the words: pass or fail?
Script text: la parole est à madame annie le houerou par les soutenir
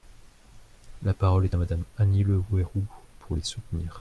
fail